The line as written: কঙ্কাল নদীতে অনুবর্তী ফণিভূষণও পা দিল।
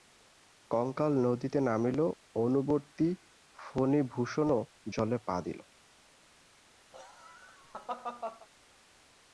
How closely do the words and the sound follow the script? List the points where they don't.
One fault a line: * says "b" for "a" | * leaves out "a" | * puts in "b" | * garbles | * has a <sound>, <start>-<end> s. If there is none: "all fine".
* puts in "নামিল"
* puts in "জলে"
* has a laugh, 6.9-8.5 s